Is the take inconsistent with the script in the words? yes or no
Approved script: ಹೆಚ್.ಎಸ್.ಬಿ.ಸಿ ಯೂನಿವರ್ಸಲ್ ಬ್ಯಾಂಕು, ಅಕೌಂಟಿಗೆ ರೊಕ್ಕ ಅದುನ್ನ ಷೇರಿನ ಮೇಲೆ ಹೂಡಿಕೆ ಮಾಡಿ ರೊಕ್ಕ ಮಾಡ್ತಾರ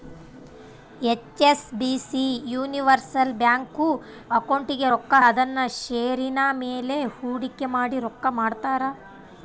no